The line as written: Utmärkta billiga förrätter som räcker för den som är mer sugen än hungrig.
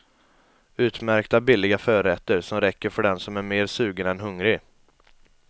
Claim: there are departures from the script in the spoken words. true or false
false